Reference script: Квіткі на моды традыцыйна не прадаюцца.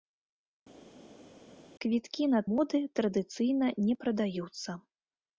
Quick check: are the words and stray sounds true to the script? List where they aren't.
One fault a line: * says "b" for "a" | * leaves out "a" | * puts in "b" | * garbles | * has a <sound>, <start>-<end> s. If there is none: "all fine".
all fine